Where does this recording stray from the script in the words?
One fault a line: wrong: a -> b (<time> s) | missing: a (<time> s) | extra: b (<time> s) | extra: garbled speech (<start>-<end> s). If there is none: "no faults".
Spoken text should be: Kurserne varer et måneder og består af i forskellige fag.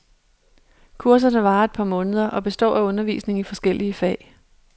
extra: par (1.7 s)
extra: undervisning (2.8 s)